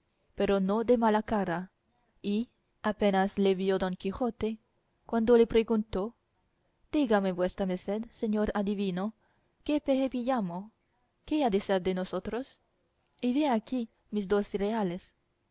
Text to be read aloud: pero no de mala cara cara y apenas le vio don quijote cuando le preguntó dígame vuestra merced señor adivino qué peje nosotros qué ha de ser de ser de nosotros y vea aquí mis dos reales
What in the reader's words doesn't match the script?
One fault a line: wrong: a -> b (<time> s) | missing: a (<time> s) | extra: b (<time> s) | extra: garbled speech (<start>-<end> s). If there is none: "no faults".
missing: cara (1.7 s)
wrong: nosotros -> pillamo (10.1 s)
missing: ser de (11.9 s)